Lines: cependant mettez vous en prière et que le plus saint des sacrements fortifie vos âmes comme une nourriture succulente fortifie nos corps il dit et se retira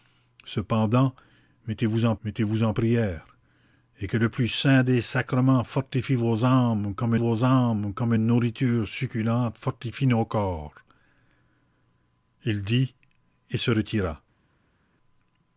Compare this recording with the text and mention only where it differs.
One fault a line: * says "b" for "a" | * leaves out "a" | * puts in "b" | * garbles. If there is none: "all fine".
* puts in "mettez vous en"
* puts in "vos âmes comme"